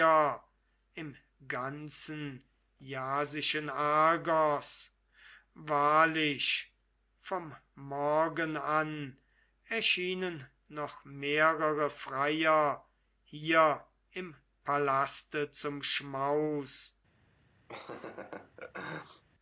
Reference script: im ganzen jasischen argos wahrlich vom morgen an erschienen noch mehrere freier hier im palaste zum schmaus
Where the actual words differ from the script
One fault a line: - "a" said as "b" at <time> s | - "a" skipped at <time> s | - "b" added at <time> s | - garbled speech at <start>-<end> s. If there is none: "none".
none